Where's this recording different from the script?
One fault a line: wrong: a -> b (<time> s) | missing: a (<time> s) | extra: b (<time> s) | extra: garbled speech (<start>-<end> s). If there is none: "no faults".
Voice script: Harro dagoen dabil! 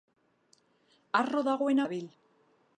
no faults